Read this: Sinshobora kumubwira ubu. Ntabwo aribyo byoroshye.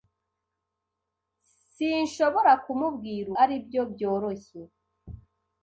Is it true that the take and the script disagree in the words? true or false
true